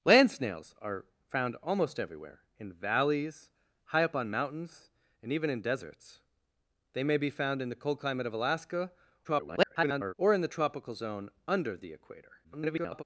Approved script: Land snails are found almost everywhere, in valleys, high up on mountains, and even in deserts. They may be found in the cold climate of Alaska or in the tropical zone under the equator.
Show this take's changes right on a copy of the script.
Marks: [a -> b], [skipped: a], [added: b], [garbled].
Land snails are found almost everywhere, in valleys, high up on mountains, and even in deserts. They may be found in the cold climate of Alaska [garbled] or in the tropical zone under the equator. [garbled]